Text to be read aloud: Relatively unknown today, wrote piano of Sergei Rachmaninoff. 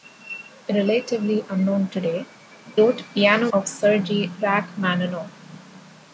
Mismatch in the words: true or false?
false